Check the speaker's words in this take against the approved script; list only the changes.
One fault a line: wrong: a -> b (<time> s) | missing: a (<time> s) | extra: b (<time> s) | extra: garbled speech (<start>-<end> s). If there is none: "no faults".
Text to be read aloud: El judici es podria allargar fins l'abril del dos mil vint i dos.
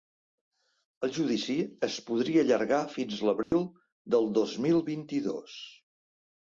no faults